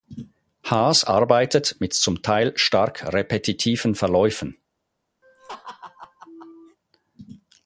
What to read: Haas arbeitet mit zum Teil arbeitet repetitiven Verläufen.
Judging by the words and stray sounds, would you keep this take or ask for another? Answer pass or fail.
fail